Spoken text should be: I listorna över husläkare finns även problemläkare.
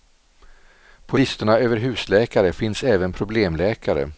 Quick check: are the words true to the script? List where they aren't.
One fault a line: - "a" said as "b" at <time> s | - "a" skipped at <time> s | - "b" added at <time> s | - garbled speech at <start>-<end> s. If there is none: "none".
- "I" said as "På" at 1.1 s